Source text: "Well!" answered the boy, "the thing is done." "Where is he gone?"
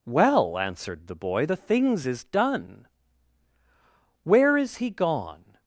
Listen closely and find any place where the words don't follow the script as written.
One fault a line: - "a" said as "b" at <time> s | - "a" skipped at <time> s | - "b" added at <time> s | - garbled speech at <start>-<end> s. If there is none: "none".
- "thing" said as "things" at 1.6 s